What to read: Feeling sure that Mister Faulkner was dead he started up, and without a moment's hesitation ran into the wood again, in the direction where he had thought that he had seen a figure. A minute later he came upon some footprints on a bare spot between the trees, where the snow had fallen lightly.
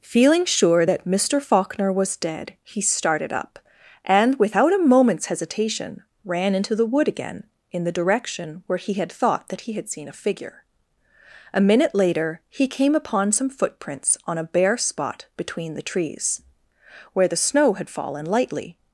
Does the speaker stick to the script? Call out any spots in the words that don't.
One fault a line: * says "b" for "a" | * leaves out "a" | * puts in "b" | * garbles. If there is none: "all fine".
all fine